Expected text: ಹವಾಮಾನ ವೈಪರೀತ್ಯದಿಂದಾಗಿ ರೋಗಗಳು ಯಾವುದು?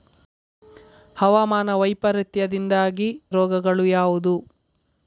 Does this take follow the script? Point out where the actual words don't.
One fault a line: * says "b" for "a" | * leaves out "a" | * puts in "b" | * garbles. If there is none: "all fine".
all fine